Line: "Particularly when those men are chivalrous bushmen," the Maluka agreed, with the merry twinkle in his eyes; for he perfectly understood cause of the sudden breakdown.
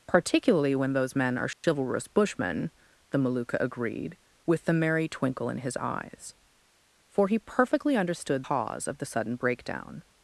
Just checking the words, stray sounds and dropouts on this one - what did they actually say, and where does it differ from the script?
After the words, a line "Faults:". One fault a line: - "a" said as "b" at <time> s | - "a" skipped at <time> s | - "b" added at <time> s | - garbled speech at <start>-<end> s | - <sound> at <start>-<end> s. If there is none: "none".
"Particularly when those men are chivalrous bushmen," the Maluka agreed, with the merry twinkle in his eyes; for he perfectly understood cause of the sudden breakdown.
Faults:
- dropout at 1.5-1.6 s